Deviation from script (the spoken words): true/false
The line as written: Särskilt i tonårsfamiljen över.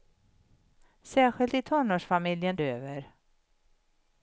false